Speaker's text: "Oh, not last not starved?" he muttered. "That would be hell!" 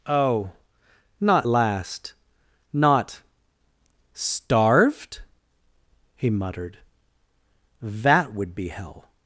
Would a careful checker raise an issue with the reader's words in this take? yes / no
no